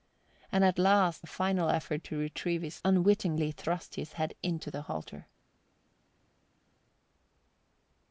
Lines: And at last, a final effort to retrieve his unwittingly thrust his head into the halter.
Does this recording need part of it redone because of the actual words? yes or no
no